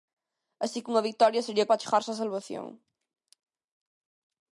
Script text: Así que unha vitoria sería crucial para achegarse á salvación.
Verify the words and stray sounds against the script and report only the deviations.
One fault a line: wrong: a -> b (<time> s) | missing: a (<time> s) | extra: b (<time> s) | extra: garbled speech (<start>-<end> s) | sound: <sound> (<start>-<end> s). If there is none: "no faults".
missing: crucial (1.7 s)